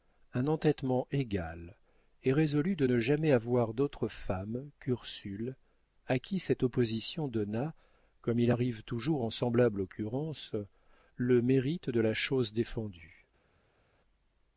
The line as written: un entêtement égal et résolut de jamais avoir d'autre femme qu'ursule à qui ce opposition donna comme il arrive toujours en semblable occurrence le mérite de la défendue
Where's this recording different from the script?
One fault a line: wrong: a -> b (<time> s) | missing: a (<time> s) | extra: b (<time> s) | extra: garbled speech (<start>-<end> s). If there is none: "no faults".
extra: ne (2.8 s)
wrong: ce -> cette (6.4 s)
extra: chose (12.1 s)